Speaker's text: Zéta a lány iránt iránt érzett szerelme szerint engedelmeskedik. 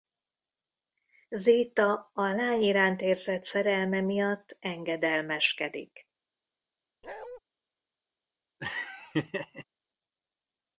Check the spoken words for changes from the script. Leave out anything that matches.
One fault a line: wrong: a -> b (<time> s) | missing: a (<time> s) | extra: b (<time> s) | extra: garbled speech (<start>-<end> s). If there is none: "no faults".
missing: iránt (3.0 s)
wrong: szerint -> miatt (4.0 s)